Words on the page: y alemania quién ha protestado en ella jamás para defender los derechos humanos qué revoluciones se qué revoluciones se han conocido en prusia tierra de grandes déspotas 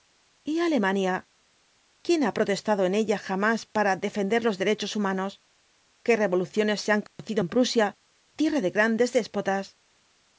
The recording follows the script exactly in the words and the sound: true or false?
false